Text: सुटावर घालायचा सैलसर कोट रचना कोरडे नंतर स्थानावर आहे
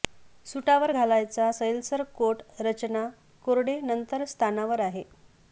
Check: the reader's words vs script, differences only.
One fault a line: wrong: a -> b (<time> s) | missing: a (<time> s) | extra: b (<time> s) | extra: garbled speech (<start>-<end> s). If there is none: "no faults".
no faults